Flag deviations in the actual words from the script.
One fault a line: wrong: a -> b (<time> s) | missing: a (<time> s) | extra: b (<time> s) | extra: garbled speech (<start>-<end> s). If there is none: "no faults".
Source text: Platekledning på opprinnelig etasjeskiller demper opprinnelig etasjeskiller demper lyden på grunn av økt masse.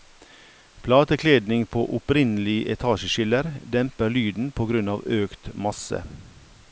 missing: opprinnelig etasjeskiller demper (4.1 s)